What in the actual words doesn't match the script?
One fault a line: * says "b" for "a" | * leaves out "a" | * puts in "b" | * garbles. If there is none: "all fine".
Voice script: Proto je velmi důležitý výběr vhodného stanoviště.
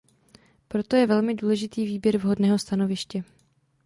all fine